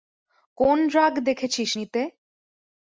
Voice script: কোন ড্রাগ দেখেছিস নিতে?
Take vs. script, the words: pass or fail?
pass